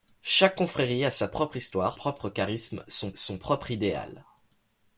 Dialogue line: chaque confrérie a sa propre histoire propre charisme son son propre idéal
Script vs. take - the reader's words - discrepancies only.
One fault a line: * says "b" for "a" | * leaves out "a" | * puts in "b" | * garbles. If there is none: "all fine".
all fine